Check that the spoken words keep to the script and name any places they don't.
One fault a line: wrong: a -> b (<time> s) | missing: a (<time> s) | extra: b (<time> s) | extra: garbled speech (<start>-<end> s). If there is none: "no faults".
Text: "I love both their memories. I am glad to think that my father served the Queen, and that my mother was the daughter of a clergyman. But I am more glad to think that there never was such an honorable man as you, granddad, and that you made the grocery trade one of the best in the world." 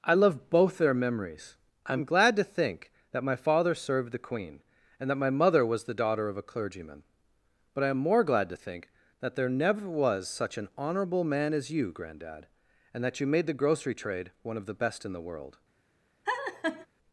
no faults